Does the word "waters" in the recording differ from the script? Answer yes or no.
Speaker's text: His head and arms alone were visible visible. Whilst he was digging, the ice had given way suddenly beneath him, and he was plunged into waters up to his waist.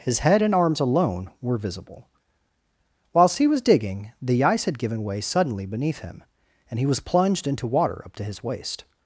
yes